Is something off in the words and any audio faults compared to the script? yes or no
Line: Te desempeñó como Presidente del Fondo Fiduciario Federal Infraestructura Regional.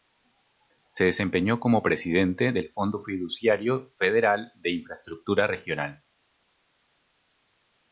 yes